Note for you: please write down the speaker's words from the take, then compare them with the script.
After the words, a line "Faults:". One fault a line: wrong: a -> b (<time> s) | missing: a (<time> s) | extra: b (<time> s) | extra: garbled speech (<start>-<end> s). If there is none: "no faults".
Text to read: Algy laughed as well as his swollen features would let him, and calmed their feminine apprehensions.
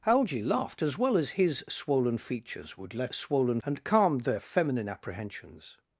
Algy laughed as well as his swollen features would let swollen, and calmed their feminine apprehensions.
Faults:
wrong: him -> swollen (3.1 s)